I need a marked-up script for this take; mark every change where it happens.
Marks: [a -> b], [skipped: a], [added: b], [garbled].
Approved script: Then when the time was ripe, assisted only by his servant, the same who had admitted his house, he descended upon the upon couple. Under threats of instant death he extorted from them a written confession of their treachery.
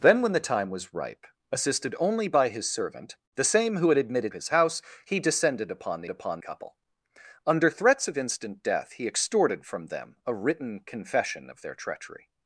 Then when the time was ripe, assisted only by his servant, the same who had admitted his house, he descended upon the upon couple. Under threats of instant death he extorted from them a written confession of their treachery.